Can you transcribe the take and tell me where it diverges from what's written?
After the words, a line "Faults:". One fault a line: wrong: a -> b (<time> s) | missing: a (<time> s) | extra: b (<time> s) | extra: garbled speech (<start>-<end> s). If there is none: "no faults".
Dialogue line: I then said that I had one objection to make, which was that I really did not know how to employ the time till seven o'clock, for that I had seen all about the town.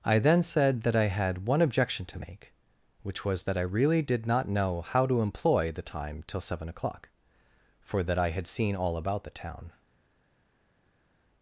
I then said that I had one objection to make, which was that I really did not know how to employ the time till seven o'clock, for that I had seen all about the town.
Faults:
no faults